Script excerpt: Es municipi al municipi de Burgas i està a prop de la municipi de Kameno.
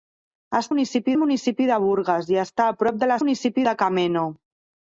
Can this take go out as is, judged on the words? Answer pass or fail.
pass